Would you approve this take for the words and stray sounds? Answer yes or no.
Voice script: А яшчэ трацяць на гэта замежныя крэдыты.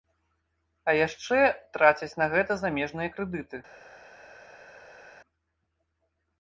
yes